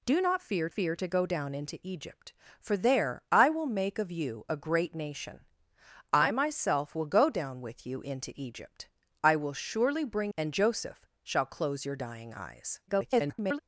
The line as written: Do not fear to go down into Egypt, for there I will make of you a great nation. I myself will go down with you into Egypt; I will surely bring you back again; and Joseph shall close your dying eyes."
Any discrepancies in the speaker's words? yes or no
yes